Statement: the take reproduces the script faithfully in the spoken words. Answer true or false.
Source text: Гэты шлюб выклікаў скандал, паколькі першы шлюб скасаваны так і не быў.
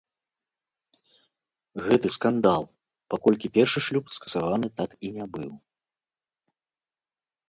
false